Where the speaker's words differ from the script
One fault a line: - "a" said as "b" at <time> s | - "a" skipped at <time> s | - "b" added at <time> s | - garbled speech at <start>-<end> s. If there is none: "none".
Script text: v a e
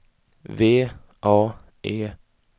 none